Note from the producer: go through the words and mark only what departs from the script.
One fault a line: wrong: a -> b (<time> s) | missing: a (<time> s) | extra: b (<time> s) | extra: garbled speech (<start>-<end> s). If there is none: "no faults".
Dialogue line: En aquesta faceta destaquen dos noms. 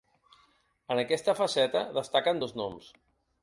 no faults